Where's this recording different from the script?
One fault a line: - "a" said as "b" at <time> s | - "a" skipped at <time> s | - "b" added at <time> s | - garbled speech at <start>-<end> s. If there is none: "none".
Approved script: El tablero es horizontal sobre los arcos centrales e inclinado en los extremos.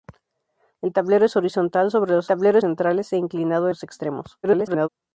- "arcos" said as "tablero" at 2.3 s
- "en" skipped at 3.7 s
- garbled speech at 4.4-4.9 s